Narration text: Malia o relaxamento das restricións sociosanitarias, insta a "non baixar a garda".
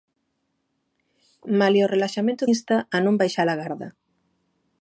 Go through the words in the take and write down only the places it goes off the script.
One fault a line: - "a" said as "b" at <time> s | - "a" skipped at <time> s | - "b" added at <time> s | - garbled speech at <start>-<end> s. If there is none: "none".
- "das restricións sociosanitarias" skipped at 2.4 s